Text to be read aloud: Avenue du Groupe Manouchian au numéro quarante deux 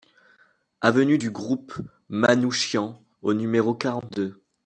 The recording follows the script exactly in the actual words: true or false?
true